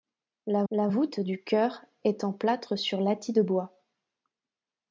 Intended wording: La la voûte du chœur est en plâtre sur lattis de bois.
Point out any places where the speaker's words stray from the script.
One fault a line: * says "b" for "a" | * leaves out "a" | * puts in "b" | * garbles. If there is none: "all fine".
all fine